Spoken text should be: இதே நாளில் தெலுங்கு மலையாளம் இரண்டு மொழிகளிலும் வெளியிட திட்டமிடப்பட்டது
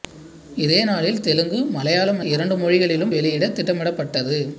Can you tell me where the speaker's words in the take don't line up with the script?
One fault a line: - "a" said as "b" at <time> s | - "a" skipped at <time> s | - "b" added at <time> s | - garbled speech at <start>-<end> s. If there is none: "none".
none